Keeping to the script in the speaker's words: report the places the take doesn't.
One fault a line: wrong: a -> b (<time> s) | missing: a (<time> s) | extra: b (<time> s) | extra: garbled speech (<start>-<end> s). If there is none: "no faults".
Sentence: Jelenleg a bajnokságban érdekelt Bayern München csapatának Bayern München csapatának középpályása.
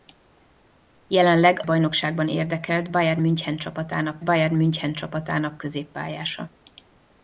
no faults